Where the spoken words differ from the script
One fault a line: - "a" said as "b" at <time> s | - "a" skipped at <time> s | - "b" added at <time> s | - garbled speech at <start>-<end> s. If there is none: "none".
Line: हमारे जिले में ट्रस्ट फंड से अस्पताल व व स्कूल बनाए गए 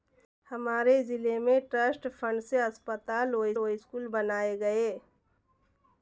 none